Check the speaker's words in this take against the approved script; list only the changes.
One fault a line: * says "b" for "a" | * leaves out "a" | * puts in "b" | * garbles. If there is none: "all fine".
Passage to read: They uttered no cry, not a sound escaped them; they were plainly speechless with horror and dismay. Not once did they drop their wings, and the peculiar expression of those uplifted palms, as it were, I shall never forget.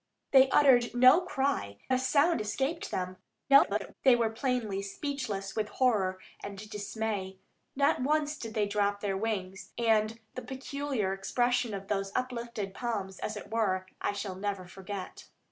* leaves out "not"
* garbles